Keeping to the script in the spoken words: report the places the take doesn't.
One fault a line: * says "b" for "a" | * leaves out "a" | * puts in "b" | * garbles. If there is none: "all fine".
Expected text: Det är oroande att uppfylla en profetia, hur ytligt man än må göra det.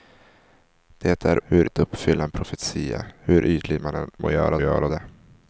* says "hur" for "oroande"
* puts in "göra"